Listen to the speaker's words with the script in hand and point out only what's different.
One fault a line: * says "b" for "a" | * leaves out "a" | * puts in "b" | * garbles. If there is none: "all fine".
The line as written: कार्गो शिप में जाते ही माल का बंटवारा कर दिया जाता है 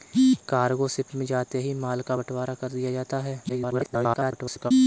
* garbles